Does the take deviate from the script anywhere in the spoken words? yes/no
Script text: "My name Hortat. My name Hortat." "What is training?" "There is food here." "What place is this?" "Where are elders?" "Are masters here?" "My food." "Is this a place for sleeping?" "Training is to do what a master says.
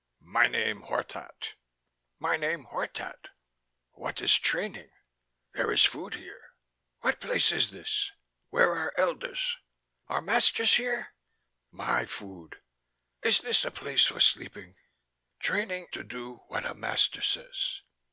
yes